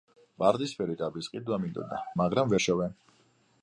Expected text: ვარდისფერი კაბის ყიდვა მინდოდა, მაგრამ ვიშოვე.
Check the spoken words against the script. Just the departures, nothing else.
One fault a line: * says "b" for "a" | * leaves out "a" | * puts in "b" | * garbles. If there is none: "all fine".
all fine